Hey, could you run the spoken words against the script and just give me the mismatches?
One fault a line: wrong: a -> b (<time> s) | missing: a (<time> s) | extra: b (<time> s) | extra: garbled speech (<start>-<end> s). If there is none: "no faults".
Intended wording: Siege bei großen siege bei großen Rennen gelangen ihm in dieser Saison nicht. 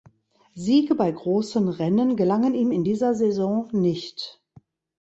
missing: siege bei großen (1.7 s)